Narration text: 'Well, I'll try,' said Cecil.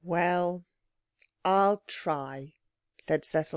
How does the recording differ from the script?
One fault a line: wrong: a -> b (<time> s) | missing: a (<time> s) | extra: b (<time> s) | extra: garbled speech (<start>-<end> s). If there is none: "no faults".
no faults